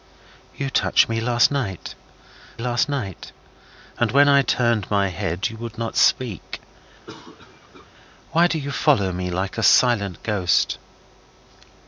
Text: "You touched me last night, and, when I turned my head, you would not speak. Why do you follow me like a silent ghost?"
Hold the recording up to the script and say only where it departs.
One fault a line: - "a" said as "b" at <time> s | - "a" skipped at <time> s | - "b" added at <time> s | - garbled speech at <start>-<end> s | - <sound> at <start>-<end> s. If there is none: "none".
- "last night" added at 2.6 s
- cough at 7.1-7.9 s